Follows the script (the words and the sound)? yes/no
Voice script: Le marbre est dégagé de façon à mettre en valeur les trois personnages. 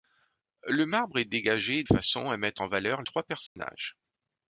no